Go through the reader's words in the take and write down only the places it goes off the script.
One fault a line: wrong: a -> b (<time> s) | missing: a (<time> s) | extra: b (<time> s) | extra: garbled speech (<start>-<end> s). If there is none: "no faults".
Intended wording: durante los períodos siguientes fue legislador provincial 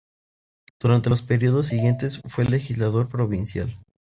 no faults